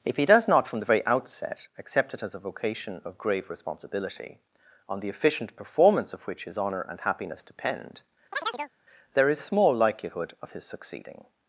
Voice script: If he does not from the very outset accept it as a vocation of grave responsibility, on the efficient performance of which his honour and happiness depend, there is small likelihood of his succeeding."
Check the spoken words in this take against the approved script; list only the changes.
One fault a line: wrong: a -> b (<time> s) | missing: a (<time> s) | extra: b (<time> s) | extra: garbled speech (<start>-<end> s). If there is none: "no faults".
no faults